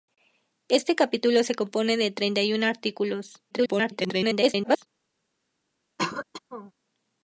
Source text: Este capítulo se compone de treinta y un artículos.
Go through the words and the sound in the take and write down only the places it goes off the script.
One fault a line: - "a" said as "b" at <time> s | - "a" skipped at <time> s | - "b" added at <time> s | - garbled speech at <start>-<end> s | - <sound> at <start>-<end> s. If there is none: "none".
- garbled speech at 3.5-4.9 s
- throat clearing at 6.0-6.7 s